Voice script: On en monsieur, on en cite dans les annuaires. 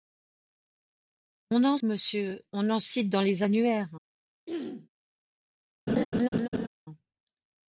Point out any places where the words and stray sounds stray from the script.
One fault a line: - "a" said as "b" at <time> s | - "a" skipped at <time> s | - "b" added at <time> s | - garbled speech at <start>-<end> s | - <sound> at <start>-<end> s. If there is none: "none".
- throat clearing at 4.5-4.9 s
- laugh at 5.9-6.7 s